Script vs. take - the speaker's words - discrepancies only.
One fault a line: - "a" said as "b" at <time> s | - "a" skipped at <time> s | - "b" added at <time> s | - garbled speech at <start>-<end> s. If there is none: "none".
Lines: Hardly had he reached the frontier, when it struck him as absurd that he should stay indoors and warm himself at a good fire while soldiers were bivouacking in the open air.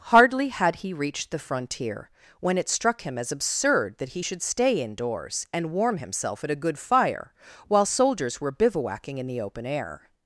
none